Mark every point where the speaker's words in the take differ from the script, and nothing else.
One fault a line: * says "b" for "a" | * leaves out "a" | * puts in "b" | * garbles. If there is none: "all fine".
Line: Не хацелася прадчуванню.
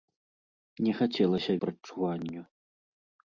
all fine